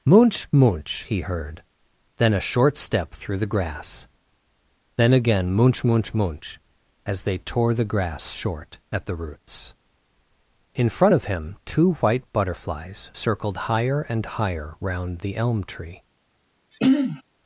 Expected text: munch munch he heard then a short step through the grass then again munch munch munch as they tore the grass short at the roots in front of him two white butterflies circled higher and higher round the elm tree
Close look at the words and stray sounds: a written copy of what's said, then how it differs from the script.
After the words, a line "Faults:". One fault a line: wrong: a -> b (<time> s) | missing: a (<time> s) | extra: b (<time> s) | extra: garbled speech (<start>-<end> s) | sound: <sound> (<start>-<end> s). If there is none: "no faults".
munch munch he heard then a short step through the grass then again munch munch munch as they tore the grass short at the roots in front of him two white butterflies circled higher and higher round the elm tree
Faults:
sound: throat clearing (16.7-17.2 s)